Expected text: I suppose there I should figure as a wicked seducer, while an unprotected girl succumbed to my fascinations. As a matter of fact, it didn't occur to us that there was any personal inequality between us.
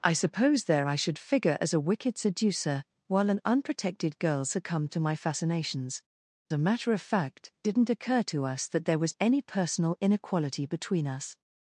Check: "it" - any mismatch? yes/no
yes